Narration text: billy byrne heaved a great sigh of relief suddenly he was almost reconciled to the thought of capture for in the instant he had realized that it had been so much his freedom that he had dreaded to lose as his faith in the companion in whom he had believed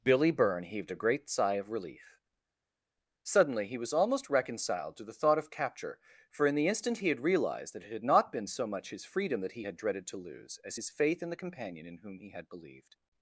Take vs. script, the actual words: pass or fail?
fail